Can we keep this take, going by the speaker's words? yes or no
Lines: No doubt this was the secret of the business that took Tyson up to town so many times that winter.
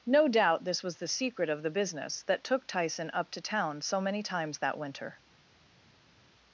yes